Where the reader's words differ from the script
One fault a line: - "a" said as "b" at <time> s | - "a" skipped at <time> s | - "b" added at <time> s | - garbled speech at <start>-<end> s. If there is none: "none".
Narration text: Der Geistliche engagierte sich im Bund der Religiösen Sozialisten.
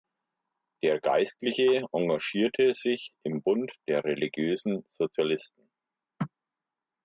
none